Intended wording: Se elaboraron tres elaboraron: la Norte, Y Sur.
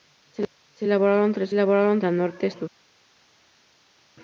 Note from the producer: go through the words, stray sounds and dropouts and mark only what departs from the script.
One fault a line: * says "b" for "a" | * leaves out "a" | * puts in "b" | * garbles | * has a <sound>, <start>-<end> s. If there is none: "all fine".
all fine